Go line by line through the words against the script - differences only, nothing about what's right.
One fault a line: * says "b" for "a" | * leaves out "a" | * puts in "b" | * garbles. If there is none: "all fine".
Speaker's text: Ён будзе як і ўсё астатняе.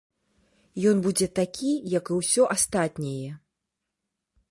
* puts in "такі"